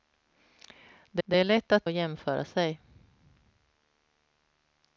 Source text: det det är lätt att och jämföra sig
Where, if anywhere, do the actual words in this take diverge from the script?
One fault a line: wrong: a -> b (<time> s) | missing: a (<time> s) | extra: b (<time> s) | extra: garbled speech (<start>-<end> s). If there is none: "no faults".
no faults